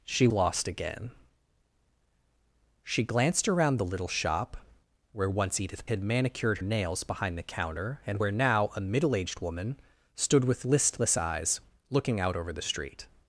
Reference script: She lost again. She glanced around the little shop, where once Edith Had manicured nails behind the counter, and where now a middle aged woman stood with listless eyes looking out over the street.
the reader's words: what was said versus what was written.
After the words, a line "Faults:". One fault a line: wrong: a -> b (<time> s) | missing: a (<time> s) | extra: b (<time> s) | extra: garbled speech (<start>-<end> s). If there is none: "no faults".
She lost again. She glanced around the little shop, where once Edith Had manicured nails behind the counter, and where now a middle aged woman stood with listless eyes looking out over the street.
Faults:
no faults